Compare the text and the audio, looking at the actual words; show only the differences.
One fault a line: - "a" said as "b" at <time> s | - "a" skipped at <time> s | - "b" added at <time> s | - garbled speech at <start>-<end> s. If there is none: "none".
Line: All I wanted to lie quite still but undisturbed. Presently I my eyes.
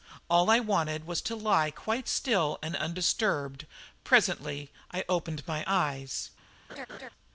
- "was" added at 1.1 s
- "but" said as "and" at 2.6 s
- "opened" added at 5.1 s